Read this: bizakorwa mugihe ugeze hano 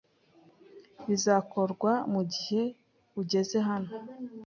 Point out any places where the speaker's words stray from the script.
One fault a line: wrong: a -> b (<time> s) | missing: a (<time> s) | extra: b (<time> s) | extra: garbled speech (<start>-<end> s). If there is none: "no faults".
no faults